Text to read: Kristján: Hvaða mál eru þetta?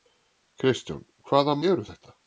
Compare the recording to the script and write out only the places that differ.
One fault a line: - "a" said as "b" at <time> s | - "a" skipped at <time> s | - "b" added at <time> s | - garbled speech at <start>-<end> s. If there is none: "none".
- "mál" skipped at 1.6 s